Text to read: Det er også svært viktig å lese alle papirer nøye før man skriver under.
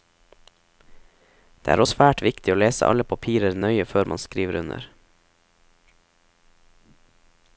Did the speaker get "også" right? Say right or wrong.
wrong